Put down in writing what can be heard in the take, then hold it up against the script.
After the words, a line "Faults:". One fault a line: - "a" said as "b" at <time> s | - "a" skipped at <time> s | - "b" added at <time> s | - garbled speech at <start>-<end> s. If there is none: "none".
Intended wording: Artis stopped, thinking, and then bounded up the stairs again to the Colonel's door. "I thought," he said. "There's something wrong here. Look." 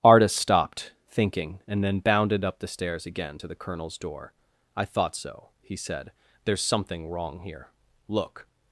Artis stopped, thinking, and then bounded up the stairs again to the Colonel's door. "I thought so," he said. "There's something wrong here. Look."
Faults:
- "so" added at 5.1 s